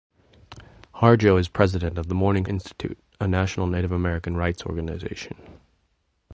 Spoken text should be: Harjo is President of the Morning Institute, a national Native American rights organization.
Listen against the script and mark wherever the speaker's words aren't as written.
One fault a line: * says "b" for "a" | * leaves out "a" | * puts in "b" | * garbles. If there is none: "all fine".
all fine